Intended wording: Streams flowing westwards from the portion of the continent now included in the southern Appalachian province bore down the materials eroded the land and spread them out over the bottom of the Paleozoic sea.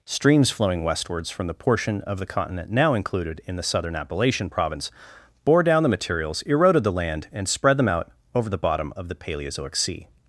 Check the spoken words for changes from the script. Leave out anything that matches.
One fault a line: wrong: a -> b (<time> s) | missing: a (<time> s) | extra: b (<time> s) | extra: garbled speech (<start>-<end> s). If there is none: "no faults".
no faults